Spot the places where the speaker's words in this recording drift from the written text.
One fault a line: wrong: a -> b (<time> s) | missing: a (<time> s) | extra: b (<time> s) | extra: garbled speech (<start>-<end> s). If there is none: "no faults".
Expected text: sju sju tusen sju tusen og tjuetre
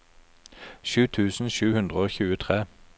missing: sju (1.0 s)
wrong: tusen -> hundre (1.7 s)